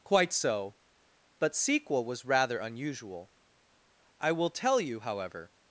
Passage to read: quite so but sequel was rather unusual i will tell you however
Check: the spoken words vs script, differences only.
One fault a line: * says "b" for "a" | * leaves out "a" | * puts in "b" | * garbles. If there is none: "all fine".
all fine